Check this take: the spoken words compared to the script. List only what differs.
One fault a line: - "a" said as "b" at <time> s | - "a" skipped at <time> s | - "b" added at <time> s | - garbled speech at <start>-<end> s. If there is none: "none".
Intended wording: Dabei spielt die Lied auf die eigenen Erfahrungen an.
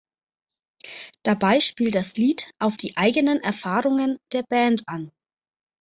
- "die" said as "das" at 1.9 s
- "der Band" added at 4.3 s